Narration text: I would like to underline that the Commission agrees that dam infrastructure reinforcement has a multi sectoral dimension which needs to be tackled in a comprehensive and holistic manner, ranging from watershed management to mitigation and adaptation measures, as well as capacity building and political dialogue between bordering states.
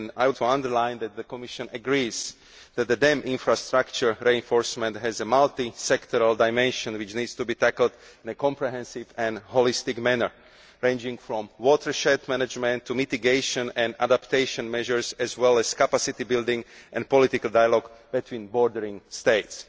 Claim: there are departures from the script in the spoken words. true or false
true